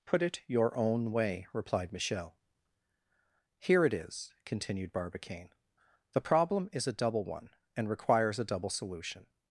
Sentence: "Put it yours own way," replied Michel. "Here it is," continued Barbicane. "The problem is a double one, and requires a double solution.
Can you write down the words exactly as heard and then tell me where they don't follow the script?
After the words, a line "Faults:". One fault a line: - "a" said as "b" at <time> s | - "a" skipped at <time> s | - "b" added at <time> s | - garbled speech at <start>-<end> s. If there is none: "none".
"Put it your own way," replied Michel. "Here it is," continued Barbicane. "The problem is a double one, and requires a double solution.
Faults:
- "yours" said as "your" at 0.5 s